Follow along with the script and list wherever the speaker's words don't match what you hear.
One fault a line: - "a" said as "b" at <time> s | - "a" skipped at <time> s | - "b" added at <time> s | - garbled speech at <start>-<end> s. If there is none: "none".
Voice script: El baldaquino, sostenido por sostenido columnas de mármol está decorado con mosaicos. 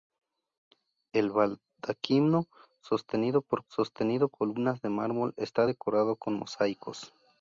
none